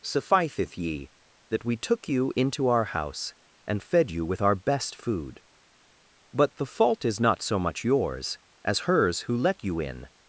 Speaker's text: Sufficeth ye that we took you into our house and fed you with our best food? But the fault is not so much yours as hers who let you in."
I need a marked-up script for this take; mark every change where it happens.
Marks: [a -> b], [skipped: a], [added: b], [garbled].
Sufficeth ye that we took you into our house and fed you with our best food? But the fault is not so much yours as hers who let you in."